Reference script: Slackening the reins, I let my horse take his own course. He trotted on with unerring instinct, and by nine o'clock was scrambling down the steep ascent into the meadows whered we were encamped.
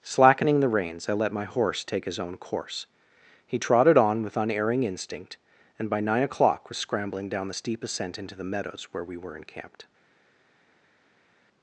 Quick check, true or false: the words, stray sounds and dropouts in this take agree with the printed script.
false